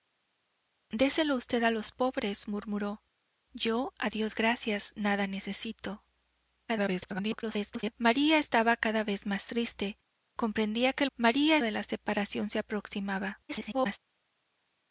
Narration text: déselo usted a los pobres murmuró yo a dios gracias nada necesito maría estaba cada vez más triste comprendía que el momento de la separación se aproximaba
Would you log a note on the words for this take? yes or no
yes